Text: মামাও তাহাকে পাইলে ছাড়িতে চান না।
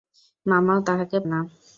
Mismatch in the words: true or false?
true